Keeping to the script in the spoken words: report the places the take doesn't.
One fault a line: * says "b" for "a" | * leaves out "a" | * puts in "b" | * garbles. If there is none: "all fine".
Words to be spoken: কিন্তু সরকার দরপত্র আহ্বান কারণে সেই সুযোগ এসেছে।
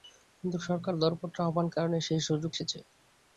all fine